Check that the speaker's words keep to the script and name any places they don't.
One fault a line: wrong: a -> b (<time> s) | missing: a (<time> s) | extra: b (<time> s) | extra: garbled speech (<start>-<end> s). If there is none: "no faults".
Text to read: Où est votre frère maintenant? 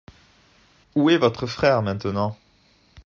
no faults